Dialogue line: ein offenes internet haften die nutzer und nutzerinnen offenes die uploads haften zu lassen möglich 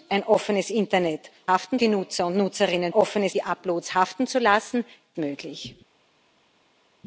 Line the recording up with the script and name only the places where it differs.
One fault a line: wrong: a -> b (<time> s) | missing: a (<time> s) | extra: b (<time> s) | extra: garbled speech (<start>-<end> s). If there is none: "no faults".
no faults